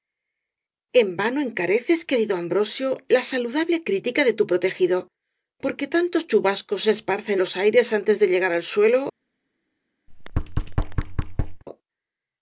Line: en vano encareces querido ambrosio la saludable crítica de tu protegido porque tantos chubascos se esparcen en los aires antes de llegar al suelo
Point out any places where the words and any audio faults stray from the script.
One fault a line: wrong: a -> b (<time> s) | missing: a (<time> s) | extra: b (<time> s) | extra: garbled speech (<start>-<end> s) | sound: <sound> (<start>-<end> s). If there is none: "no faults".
missing: en (7.4 s)
sound: thud (10.1-11.6 s)